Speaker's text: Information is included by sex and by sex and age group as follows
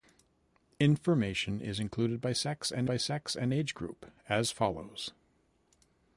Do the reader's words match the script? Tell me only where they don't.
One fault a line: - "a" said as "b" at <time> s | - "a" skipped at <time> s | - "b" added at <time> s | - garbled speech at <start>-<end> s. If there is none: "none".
none